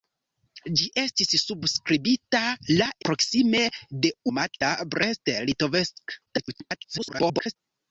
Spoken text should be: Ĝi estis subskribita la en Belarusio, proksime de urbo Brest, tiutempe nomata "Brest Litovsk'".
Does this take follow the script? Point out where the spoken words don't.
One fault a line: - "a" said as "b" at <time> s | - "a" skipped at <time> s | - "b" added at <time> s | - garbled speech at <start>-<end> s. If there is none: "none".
- "en Belarusio" skipped at 2.9 s
- "urbo Brest tiutempe" skipped at 4.1 s
- garbled speech at 6.3-7.6 s